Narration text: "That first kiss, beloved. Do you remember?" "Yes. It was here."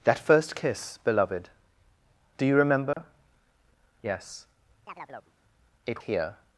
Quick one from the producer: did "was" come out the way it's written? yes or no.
no